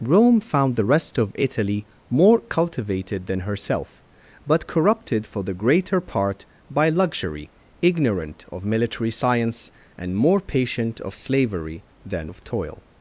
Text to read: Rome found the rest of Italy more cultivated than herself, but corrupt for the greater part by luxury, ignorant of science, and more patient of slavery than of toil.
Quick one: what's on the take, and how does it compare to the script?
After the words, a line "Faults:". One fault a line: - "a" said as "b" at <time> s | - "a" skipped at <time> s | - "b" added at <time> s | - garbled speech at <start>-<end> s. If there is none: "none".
Rome found the rest of Italy more cultivated than herself, but corrupted for the greater part by luxury, ignorant of military science, and more patient of slavery than of toil.
Faults:
- "corrupt" said as "corrupted" at 4.6 s
- "military" added at 8.6 s